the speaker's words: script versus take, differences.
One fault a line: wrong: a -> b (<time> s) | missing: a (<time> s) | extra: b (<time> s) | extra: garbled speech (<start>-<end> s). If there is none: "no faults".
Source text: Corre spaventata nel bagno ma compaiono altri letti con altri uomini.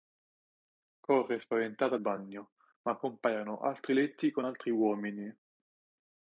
missing: nel (1.9 s)